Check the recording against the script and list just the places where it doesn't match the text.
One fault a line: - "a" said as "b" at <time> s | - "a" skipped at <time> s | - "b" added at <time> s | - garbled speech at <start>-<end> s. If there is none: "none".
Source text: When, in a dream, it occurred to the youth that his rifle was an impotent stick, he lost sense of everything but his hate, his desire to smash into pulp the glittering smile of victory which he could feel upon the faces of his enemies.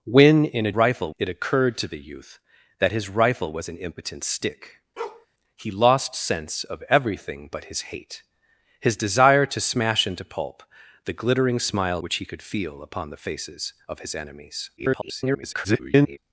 - "dream" said as "rifle" at 0.7 s
- "of victory" skipped at 12.0 s
- garbled speech at 14.8-16.2 s